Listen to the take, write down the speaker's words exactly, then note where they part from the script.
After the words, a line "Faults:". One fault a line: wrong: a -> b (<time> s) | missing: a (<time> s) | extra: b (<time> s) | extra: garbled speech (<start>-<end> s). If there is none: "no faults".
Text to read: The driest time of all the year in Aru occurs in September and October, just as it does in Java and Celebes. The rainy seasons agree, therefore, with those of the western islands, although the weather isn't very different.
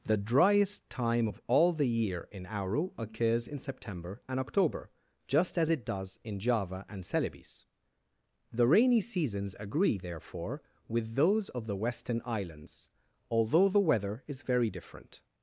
The driest time of all the year in Aru occurs in September and October, just as it does in Java and Celebes. The rainy seasons agree, therefore, with those of the western islands, although the weather is very different.
Faults:
wrong: isn't -> is (14.3 s)